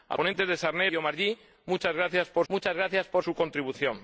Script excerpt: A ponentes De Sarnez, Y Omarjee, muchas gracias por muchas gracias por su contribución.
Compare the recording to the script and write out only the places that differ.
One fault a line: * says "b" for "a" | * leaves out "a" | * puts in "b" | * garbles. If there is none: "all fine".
all fine